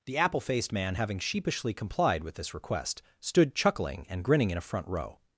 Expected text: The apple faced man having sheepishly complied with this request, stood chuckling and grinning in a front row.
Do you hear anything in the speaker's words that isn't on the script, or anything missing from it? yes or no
no